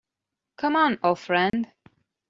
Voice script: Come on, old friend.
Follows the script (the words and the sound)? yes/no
no